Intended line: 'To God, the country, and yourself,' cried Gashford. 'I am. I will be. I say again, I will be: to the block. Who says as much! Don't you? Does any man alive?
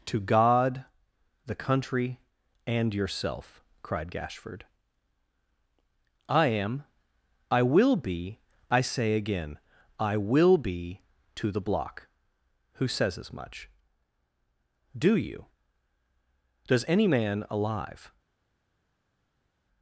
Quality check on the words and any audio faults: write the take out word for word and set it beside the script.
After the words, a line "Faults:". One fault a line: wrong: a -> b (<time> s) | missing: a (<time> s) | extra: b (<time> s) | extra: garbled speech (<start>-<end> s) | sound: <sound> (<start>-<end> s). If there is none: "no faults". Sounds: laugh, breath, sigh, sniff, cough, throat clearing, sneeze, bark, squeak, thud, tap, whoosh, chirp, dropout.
'To God, the country, and yourself,' cried Gashford. 'I am. I will be. I say again, I will be: to the block. Who says as much! Do you? Does any man alive?
Faults:
wrong: Don't -> Do (15.0 s)